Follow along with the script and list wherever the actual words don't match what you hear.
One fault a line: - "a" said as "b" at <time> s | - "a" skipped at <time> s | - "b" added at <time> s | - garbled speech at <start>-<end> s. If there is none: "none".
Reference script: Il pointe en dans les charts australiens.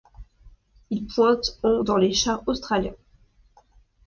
none